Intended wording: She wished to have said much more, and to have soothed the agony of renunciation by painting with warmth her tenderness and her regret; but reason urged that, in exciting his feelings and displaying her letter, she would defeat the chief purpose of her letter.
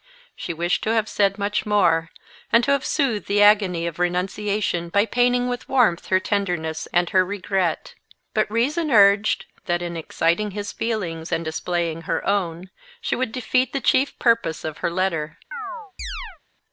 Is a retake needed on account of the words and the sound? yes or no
yes